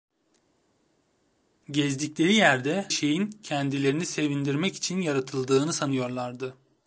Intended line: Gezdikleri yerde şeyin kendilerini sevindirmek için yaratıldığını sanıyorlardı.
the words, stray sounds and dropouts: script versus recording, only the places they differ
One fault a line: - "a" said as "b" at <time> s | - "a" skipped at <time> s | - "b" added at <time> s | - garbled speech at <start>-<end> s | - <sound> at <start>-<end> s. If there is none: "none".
none